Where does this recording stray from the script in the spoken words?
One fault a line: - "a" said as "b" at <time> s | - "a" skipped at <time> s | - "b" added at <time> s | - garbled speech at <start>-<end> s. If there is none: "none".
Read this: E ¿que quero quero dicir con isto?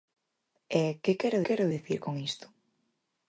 none